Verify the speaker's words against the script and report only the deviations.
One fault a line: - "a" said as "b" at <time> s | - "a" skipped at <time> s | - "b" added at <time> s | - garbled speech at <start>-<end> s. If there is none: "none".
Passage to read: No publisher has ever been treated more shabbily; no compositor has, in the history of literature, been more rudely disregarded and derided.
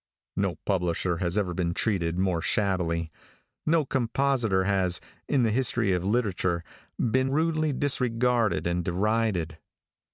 - "more" skipped at 7.3 s